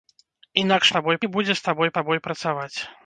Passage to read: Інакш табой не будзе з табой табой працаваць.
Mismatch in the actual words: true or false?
false